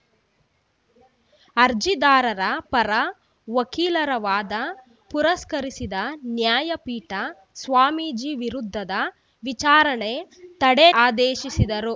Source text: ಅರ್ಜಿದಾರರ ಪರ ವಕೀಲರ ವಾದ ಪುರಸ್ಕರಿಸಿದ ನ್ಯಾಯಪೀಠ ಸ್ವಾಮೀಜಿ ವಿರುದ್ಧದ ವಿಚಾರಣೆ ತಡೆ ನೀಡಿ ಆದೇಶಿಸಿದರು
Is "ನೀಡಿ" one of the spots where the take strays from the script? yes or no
yes